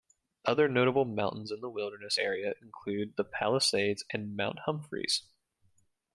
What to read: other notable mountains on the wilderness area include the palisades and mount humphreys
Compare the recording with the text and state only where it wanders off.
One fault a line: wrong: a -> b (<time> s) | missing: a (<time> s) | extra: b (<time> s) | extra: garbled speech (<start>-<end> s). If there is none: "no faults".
wrong: on -> in (1.5 s)